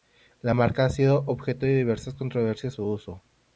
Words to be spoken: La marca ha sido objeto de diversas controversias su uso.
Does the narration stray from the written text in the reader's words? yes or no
no